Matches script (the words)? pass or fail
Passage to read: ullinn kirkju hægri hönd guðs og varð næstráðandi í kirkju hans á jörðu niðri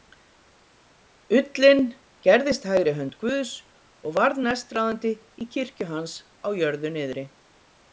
fail